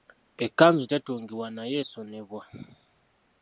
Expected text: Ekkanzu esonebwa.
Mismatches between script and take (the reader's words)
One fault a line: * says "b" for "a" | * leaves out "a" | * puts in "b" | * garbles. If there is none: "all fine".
* puts in "tetungibwa naye"